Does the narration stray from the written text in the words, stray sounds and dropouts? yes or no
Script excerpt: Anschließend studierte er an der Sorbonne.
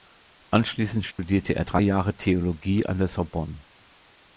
yes